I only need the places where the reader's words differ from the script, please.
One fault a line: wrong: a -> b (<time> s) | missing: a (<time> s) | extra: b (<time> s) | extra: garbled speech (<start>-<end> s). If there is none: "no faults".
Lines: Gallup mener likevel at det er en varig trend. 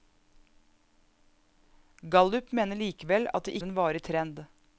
no faults